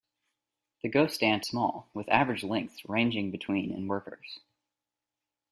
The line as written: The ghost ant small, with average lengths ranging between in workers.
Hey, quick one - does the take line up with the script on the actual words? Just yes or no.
yes